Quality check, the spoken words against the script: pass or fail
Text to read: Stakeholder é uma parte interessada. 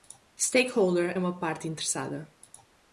pass